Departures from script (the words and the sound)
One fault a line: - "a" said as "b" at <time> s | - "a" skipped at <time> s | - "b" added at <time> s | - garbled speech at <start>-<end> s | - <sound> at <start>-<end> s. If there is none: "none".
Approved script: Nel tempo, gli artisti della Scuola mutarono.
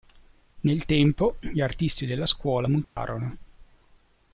- dropout at 2.8-3.0 s